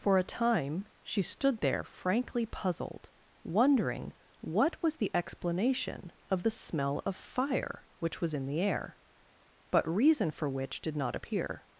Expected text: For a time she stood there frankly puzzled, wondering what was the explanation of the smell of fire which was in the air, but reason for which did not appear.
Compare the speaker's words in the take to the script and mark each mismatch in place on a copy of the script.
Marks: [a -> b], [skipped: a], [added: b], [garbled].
For a time she stood there frankly puzzled, wondering what was the explanation of the smell of fire which was in the air, but reason for which did not appear.